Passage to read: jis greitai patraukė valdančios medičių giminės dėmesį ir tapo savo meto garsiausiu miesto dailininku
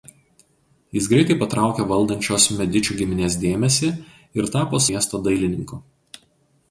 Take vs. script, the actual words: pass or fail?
fail